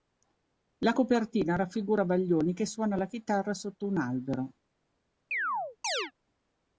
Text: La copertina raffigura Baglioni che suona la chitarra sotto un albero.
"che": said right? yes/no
yes